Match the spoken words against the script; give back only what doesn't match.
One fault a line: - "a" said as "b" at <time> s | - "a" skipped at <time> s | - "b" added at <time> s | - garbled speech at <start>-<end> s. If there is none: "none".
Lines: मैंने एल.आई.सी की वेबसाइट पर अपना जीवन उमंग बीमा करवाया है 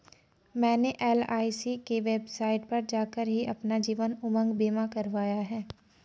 - "जाकर ही" added at 2.9 s